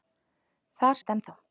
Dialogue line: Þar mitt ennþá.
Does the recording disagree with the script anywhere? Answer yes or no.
no